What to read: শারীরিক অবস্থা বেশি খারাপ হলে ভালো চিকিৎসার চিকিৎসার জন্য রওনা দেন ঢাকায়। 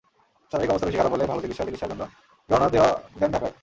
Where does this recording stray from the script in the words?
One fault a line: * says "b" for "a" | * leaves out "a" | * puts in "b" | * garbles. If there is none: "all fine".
all fine